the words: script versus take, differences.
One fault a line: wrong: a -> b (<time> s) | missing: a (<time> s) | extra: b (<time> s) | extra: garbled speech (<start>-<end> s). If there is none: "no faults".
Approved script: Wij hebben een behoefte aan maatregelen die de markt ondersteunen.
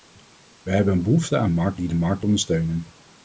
wrong: maatregelen -> markt (1.5 s)